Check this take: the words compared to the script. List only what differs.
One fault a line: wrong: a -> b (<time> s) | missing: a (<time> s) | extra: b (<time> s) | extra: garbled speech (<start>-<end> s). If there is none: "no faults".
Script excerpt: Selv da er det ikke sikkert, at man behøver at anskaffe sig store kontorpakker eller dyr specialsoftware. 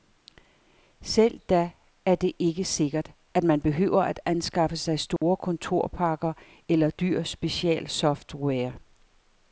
no faults